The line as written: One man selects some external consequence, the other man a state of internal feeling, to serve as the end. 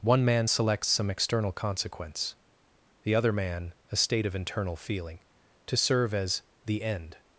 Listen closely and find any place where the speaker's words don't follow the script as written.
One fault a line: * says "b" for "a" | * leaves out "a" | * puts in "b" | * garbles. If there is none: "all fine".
all fine